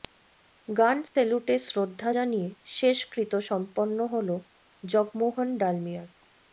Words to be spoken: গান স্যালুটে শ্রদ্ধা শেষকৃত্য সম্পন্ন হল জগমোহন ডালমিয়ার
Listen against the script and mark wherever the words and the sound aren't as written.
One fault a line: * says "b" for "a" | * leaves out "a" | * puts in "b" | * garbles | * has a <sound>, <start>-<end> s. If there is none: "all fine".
* has a dropout, 1.1-1.2 s
* puts in "জানিয়ে"